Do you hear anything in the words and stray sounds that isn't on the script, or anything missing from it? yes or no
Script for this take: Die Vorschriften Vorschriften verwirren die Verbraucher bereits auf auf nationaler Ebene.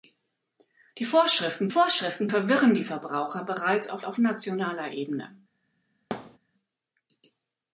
yes